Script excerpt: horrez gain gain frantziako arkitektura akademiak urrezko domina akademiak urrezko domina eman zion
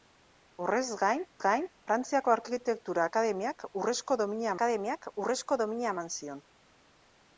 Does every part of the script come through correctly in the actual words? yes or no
yes